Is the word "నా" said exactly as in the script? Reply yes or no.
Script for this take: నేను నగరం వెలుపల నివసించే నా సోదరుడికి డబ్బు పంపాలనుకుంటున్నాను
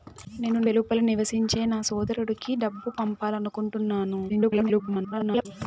yes